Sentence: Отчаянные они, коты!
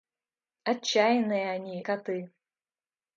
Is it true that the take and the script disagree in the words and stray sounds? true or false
false